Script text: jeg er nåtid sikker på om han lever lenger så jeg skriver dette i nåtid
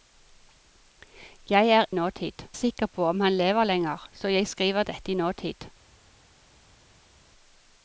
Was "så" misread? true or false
false